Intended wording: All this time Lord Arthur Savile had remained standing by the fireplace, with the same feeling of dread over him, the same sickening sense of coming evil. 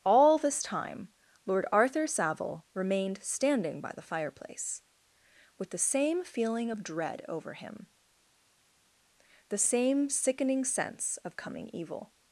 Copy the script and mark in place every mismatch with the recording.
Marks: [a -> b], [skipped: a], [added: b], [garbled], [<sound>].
All this time Lord Arthur Savile [skipped: had] remained standing by the fireplace, with the same feeling of dread over him, the same sickening sense of coming evil.